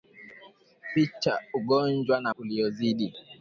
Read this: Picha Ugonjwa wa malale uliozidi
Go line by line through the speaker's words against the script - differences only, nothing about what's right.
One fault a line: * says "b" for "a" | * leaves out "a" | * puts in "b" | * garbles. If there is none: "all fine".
* leaves out "malale"